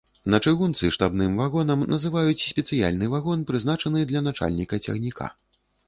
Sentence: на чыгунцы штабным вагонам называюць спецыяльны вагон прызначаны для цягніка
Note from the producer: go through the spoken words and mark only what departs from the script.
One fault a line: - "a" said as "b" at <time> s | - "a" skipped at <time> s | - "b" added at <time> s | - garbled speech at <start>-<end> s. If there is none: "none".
- "начальніка" added at 4.3 s